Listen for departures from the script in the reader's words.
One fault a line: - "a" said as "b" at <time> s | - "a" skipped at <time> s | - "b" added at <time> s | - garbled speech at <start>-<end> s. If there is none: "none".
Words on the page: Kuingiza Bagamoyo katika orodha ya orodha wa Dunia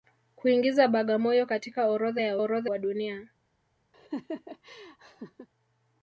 none